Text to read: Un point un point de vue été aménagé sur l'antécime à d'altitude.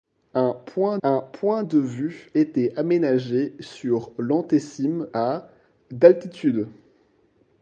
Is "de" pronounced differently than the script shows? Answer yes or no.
no